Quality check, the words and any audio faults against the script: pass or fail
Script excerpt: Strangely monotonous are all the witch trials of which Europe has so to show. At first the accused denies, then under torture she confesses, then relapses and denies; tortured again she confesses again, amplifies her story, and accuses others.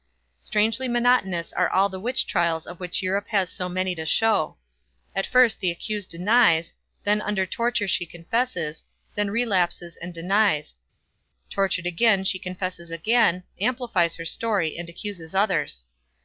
fail